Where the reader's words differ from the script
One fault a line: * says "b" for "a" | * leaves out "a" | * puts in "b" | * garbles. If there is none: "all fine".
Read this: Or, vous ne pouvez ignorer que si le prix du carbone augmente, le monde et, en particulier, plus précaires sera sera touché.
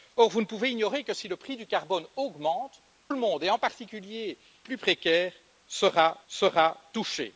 all fine